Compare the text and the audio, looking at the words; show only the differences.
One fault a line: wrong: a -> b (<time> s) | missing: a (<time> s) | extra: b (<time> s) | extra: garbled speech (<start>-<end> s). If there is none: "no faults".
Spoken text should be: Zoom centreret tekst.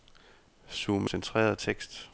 no faults